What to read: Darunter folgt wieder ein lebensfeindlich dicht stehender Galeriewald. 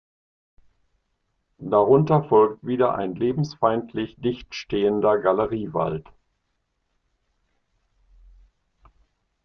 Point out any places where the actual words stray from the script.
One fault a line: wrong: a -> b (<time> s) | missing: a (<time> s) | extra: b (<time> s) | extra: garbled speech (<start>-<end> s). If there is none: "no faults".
no faults